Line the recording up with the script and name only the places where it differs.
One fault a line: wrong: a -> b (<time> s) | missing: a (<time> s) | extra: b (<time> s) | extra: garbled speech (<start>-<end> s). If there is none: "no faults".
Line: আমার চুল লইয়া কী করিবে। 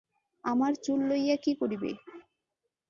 no faults